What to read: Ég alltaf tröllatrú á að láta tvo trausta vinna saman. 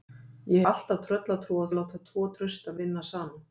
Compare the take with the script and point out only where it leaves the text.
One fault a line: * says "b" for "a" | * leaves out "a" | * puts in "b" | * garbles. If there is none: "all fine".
all fine